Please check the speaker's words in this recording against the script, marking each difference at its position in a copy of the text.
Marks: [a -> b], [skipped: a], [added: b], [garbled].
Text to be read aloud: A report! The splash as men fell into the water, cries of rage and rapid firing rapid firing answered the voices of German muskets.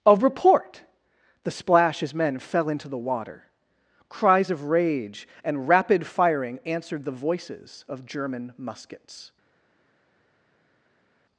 A report! The splash as men fell into the water, cries of rage and rapid firing [skipped: rapid firing] answered the voices of German muskets.